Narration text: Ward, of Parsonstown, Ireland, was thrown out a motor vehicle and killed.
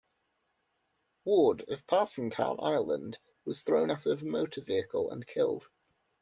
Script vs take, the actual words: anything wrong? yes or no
yes